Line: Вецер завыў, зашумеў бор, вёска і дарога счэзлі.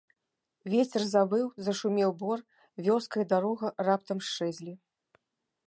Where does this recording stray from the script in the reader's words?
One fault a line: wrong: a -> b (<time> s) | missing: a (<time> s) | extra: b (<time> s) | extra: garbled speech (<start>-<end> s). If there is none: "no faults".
extra: раптам (3.9 s)